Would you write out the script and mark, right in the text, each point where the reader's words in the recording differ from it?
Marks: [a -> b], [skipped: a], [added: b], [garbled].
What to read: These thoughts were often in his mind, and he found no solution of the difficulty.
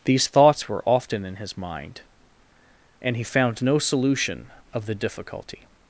These thoughts were often in his mind, and he found no solution of the difficulty.